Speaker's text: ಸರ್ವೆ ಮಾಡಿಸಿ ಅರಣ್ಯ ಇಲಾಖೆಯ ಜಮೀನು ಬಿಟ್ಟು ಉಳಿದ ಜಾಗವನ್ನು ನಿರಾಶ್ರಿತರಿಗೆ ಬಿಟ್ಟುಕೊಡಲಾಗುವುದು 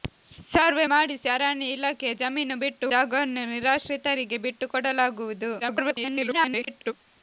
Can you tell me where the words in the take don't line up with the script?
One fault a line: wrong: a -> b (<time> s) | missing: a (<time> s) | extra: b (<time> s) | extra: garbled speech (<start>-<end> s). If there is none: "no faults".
missing: ಉಳಿದ (2.9 s)
extra: garbled speech (5.6-6.9 s)